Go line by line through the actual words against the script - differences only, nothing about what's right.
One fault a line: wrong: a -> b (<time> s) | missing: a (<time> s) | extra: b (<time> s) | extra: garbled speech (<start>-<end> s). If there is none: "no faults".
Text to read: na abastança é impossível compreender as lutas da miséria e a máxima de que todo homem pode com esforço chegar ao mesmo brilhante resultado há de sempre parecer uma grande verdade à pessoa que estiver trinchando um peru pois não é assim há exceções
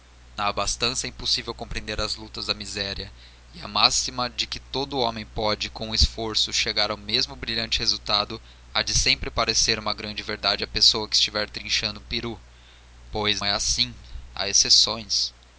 missing: não (13.4 s)